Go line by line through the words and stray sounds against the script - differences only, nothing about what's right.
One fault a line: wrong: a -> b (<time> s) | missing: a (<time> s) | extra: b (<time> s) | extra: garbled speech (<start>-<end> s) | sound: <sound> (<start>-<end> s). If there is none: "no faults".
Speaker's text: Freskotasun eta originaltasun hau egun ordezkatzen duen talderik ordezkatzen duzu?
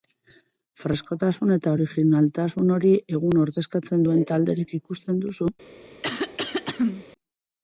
wrong: hau -> hori (2.8 s)
wrong: ordezkatzen -> ikusten (4.8 s)
sound: throat clearing (6.0-7.1 s)